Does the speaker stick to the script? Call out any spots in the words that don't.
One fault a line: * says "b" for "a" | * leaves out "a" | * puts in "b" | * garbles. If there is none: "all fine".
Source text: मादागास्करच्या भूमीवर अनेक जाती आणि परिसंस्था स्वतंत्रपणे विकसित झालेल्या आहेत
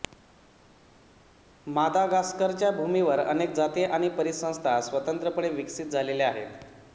all fine